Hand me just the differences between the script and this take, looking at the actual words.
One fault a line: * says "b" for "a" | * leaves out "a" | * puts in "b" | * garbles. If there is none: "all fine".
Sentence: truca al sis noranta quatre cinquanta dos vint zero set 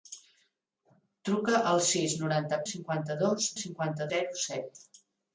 * leaves out "quatre"
* says "cinquanta" for "vint"